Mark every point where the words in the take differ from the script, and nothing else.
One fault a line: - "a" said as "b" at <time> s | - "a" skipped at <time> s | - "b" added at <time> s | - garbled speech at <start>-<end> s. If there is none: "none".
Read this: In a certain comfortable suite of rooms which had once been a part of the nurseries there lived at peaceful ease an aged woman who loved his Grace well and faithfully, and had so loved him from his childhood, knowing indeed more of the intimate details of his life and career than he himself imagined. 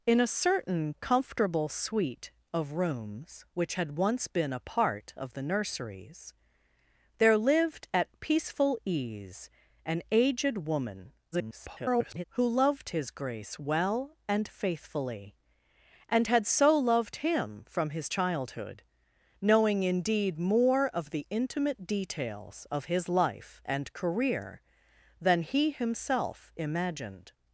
- garbled speech at 11.3-12.2 s